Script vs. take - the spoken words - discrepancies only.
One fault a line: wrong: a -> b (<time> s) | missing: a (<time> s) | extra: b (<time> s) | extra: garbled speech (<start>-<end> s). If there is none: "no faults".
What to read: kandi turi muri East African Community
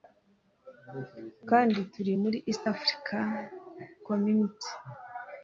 no faults